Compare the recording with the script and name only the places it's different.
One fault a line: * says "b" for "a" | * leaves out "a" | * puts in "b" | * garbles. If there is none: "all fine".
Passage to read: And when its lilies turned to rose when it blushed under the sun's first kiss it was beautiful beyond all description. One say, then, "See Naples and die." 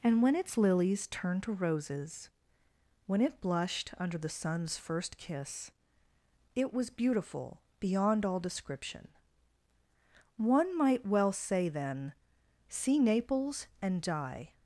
* says "roses" for "rose"
* puts in "might well"